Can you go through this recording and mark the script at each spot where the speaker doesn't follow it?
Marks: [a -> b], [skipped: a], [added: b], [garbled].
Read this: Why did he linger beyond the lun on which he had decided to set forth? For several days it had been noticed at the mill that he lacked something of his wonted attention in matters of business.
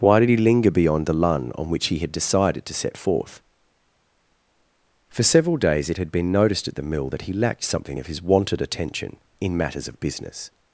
Why did he linger beyond the lun on which he had decided to set forth? For several days it had been noticed at the mill that he lacked something of his wonted attention in matters of business.